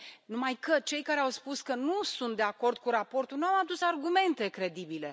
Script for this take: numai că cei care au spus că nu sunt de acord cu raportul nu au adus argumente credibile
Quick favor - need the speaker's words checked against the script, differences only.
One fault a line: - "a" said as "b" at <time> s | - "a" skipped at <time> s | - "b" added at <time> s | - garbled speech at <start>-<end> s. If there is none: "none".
none